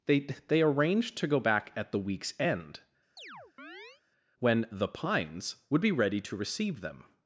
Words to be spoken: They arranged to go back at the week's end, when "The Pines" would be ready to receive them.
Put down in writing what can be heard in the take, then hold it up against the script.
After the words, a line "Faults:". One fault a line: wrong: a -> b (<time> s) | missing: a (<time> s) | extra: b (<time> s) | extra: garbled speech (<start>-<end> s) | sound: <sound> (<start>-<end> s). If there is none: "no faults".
They they arranged to go back at the week's end, when "The Pines" would be ready to receive them.
Faults:
extra: they (0.2 s)
sound: chirp (3.2-4.0 s)